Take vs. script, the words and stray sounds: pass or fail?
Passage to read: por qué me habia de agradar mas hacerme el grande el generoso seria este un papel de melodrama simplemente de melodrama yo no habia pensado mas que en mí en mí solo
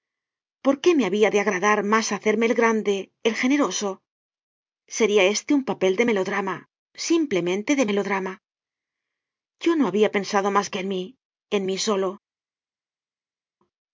pass